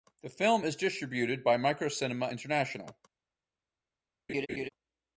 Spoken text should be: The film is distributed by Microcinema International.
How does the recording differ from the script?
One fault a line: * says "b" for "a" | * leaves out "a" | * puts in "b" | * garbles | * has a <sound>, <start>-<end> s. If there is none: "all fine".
* has a laugh, 4.3-4.7 s